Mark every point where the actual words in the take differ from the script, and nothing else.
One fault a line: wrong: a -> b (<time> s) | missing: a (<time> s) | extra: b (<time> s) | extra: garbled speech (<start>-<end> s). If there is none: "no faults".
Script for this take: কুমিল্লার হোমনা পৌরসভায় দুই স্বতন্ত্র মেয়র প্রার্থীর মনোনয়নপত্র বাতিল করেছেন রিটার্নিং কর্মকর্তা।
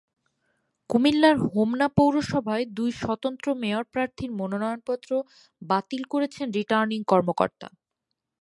no faults